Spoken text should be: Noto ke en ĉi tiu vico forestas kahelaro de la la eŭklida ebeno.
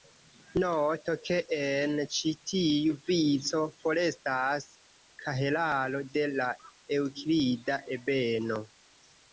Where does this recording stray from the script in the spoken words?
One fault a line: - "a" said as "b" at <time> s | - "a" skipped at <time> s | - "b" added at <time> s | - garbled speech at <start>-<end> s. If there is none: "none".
- "la" skipped at 6.5 s